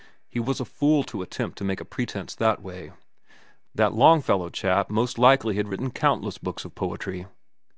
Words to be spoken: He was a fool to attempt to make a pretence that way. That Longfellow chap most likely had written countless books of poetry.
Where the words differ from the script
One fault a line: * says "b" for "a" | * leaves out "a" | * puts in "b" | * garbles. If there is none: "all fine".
all fine